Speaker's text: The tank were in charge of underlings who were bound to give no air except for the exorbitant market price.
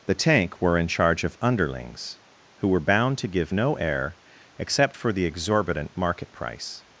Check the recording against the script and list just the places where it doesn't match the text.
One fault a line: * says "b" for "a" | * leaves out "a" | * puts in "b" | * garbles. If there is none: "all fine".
all fine